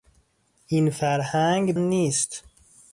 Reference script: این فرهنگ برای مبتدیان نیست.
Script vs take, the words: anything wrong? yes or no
yes